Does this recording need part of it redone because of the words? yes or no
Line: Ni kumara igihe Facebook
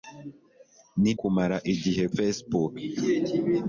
no